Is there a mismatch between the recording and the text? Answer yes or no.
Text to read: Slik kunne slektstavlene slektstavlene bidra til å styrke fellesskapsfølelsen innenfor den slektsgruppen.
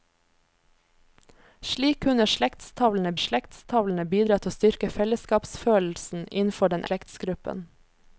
no